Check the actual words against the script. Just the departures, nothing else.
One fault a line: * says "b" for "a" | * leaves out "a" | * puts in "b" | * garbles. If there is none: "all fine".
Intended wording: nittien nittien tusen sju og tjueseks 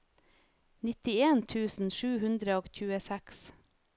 * leaves out "nittien"
* puts in "hundre"